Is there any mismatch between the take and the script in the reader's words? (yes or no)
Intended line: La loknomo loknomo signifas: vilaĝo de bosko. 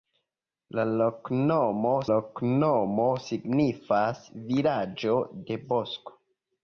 no